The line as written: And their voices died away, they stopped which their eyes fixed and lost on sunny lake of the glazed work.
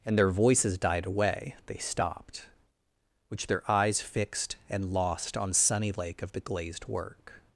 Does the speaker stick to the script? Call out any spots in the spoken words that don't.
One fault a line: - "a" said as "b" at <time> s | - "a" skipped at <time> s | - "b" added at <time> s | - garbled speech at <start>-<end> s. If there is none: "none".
none